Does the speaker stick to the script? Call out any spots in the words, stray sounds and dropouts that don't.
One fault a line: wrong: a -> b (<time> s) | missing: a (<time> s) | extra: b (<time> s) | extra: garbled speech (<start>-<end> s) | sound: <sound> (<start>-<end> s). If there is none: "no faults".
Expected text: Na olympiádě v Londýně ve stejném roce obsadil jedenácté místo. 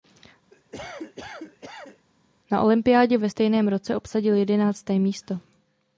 sound: cough (0.5-2.1 s)
missing: Londýně (3.2 s)